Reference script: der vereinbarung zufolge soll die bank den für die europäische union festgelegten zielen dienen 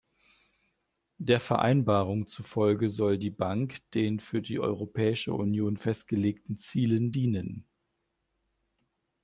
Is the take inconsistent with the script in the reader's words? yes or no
no